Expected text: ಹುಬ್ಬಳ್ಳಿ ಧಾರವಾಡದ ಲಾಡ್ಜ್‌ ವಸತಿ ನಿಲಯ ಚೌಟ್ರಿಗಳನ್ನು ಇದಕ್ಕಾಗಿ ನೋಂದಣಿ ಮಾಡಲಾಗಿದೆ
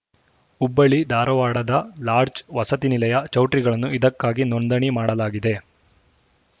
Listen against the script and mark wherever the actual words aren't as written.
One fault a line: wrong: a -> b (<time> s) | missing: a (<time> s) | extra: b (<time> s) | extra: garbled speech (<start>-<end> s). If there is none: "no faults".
no faults